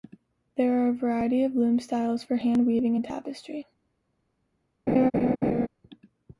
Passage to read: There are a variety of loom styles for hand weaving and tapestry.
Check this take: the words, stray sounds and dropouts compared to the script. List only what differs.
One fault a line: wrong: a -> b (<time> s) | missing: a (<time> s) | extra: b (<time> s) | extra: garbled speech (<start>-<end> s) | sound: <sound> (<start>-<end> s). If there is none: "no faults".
sound: laugh (4.9-5.7 s)